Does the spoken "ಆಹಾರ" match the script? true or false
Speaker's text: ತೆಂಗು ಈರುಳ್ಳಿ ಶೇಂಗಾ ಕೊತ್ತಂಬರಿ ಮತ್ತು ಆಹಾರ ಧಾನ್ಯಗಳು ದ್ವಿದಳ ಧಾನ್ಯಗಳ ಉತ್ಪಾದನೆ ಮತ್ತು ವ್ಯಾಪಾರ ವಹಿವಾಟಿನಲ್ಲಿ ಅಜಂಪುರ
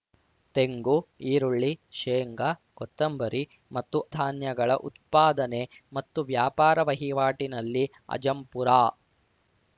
false